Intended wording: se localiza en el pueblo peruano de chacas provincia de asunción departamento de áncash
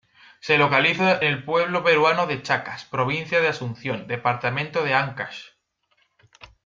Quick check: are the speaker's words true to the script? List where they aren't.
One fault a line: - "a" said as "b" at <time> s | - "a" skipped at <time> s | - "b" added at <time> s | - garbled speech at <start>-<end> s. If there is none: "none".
- "en" skipped at 1.2 s